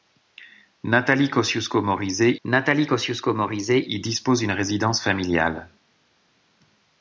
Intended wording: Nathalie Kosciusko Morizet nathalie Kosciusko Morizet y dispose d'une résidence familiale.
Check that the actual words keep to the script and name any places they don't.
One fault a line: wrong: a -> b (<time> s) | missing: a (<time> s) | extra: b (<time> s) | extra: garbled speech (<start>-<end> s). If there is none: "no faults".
no faults